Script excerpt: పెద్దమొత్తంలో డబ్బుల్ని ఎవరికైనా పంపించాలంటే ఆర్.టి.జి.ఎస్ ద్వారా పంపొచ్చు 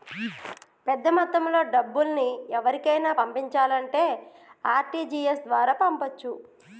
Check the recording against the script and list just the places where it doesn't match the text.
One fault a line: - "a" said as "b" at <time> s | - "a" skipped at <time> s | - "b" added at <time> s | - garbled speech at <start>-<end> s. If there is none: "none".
none